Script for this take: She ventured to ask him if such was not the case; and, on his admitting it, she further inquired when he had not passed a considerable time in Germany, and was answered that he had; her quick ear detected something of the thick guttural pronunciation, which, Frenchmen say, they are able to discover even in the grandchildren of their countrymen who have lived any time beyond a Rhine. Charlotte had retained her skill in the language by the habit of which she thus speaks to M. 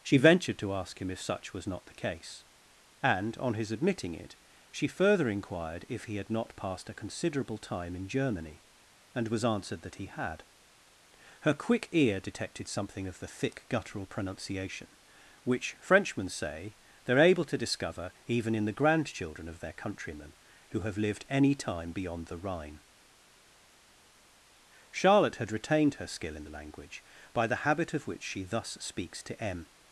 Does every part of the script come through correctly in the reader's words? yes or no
no